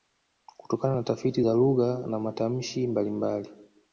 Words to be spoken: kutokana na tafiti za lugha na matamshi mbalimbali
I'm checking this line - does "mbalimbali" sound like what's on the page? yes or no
yes